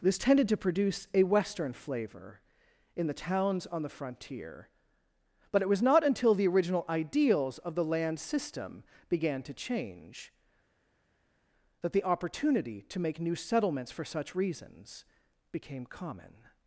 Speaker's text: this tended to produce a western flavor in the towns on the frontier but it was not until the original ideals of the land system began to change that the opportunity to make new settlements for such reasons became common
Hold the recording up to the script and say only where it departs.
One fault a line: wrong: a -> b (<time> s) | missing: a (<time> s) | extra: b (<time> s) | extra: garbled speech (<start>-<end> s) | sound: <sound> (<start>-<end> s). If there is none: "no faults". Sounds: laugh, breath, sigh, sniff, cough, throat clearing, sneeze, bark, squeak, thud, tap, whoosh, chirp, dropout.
no faults